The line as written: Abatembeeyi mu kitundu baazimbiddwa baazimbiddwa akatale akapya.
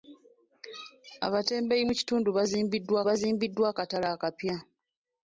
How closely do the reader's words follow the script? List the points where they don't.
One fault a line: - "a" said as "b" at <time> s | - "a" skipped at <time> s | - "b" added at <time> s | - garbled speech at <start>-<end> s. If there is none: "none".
none